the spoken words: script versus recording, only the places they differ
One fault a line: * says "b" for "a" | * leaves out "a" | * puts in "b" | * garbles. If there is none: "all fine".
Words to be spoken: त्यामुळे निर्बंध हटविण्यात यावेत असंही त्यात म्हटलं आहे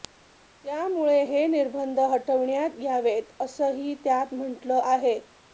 * puts in "हे"